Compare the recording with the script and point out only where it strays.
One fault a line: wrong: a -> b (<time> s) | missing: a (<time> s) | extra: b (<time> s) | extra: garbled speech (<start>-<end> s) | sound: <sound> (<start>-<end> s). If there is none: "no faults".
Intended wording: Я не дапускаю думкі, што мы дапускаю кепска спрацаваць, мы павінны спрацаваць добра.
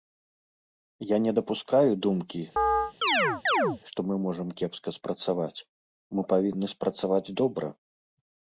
sound: chirp (2.6-3.8 s)
wrong: дапускаю -> можам (4.3 s)